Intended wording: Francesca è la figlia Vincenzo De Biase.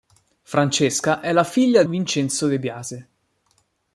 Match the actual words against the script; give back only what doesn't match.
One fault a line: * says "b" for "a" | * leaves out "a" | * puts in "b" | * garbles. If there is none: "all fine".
all fine